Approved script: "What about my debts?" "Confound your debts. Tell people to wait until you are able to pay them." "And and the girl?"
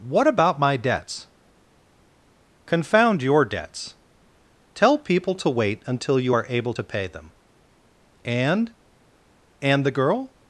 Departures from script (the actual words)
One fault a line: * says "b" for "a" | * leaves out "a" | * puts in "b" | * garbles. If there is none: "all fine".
all fine